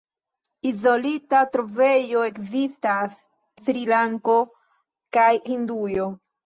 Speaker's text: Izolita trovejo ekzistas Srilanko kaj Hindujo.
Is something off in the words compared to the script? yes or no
no